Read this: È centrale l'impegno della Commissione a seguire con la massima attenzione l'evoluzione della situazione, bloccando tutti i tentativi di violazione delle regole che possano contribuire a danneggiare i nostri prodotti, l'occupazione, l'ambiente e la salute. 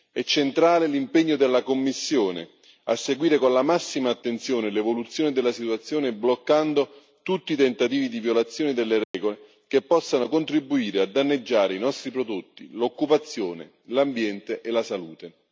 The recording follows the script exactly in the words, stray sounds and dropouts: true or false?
false